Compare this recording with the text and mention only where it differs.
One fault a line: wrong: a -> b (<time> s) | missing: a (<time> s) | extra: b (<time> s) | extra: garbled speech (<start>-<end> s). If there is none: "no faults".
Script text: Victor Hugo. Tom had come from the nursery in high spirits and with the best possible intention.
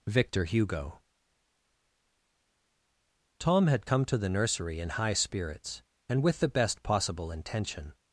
wrong: from -> to (4.0 s)